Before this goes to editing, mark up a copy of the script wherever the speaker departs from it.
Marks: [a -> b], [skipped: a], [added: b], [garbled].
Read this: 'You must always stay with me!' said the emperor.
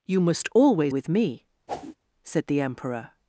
'You must always [skipped: stay] with me!' said the emperor.